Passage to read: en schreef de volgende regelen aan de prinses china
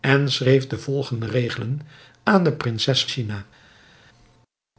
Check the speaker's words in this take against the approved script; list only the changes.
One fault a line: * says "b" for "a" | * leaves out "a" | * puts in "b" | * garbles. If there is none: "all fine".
all fine